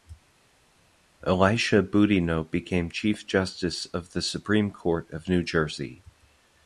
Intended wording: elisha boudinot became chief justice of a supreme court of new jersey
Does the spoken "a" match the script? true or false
false